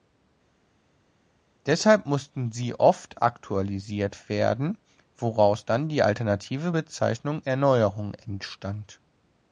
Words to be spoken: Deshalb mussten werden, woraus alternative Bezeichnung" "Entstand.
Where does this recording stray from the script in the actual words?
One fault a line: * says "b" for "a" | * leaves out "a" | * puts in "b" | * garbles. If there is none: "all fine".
* puts in "sie oft aktualisiert"
* puts in "dann die"
* puts in "Erneuerung"